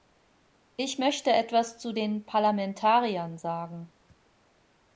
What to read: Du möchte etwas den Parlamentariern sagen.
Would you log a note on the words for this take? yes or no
yes